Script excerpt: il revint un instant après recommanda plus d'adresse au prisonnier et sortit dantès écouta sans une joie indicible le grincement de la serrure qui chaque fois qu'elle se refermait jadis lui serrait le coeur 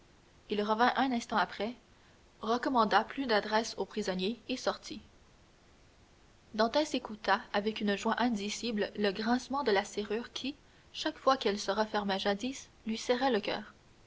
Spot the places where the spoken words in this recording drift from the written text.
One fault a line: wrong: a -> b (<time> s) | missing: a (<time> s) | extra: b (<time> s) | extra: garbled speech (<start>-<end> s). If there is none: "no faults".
wrong: sans -> avec (7.5 s)